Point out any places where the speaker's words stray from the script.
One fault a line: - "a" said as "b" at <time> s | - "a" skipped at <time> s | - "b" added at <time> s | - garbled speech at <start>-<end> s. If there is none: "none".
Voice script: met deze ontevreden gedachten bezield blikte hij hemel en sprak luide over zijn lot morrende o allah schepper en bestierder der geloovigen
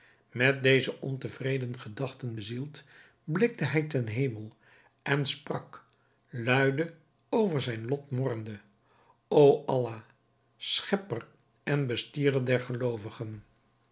- "ten" added at 3.8 s